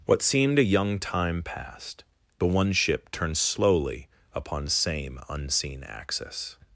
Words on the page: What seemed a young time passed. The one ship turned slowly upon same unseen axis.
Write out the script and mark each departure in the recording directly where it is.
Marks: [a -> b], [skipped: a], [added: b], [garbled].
What seemed a young time passed. The one ship turned slowly upon same unseen axis.